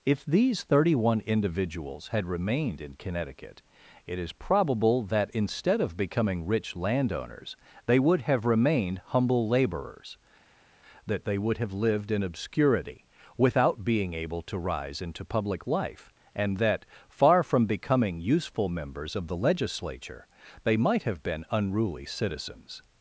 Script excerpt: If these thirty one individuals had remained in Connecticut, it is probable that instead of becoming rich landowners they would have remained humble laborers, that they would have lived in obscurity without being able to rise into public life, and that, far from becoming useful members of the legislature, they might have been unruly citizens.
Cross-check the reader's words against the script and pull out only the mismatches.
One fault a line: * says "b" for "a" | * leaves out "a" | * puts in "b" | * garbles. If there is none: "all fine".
all fine